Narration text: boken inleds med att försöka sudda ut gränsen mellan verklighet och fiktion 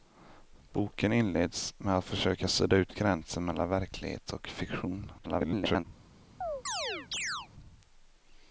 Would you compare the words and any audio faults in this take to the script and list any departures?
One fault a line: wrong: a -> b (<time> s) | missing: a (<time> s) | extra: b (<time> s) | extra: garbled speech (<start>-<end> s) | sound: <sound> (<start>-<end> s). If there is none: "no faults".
extra: garbled speech (5.2-5.9 s)
sound: chirp (6.4-7.5 s)